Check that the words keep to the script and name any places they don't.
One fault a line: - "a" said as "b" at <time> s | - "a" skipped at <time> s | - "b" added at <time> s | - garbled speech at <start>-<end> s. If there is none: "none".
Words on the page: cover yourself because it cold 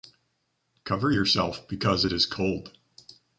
- "is" added at 2.1 s